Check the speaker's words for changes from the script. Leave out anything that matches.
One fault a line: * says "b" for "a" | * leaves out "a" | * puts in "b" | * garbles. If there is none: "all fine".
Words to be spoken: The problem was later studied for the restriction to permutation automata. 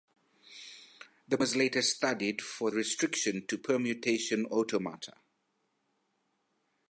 * leaves out "problem"
* leaves out "the"